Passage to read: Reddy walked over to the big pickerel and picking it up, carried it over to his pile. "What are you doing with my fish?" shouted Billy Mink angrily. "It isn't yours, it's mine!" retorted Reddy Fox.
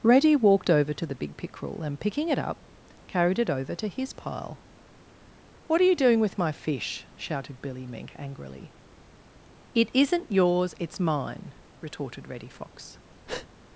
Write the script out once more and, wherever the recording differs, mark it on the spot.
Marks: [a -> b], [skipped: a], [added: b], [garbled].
Reddy walked over to the big pickerel and picking it up, carried it over to his pile. "What are you doing with my fish?" shouted Billy Mink angrily. "It isn't yours, it's mine!" retorted Reddy Fox.